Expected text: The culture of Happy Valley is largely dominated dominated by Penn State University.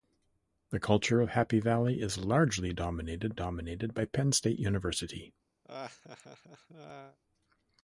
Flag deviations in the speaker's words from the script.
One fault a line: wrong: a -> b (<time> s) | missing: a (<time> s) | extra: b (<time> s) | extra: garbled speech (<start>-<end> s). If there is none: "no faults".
no faults